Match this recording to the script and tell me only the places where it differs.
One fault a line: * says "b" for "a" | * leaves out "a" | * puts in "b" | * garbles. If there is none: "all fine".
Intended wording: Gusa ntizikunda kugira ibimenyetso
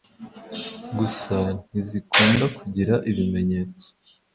all fine